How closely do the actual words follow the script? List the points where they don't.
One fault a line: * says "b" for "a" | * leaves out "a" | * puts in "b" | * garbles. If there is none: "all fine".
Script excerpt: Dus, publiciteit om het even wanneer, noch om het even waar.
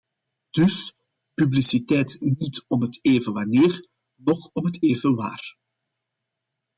* puts in "niet"